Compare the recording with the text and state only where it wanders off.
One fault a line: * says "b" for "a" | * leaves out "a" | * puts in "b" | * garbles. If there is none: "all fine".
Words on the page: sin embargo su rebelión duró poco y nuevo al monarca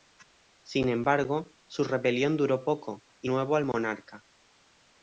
all fine